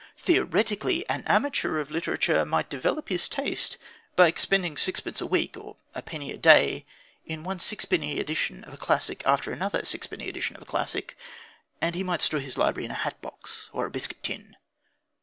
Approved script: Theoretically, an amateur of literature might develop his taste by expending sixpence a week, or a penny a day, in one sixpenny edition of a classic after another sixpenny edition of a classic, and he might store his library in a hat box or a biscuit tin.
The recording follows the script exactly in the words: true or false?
true